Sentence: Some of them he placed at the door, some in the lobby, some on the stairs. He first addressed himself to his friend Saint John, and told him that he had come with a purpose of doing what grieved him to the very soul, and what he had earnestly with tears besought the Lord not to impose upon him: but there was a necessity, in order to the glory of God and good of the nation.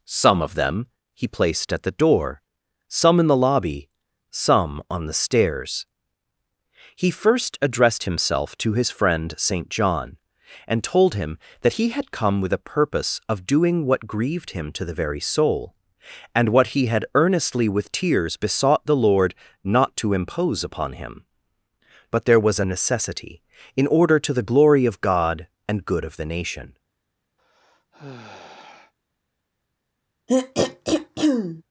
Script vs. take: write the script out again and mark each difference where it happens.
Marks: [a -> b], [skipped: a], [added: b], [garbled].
Some of them he placed at the door, some in the lobby, some on the stairs. He first addressed himself to his friend Saint John, and told him that he had come with a purpose of doing what grieved him to the very soul, and what he had earnestly with tears besought the Lord not to impose upon him: but there was a necessity, in order to the glory of God and good of the nation.